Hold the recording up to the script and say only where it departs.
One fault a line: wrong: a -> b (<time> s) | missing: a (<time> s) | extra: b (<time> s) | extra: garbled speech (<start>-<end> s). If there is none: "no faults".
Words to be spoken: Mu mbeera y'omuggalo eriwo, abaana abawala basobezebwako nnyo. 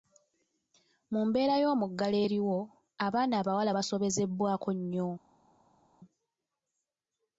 no faults